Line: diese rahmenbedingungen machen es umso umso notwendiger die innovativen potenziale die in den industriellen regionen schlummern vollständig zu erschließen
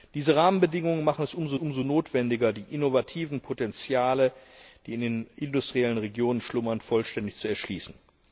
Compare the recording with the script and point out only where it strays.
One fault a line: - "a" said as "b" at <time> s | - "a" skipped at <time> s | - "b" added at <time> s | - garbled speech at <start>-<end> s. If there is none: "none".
none